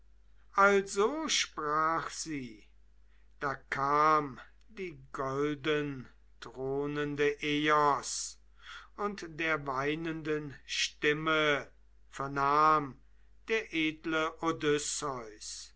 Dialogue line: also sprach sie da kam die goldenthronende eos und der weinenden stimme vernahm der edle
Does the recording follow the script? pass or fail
pass